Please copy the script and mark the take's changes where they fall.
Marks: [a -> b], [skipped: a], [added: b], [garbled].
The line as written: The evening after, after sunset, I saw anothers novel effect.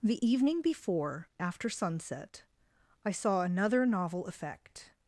The evening [after, -> before] after sunset, I saw [anothers -> another] novel effect.